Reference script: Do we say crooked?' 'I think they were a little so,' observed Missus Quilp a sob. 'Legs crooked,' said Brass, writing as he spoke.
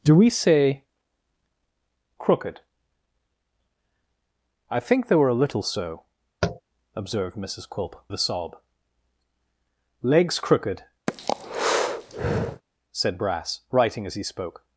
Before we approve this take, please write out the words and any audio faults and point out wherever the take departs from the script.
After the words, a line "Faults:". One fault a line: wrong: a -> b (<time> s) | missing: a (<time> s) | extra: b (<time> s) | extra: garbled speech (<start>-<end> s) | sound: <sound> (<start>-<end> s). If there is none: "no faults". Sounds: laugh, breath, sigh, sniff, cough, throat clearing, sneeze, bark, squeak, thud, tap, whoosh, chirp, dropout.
Do we say crooked?' 'I think they were a little so,' observed Missus Quilp a sob. 'Legs crooked,' said Brass, writing as he spoke.
Faults:
sound: tap (6.4-6.6 s)
sound: breath (11.1-12.6 s)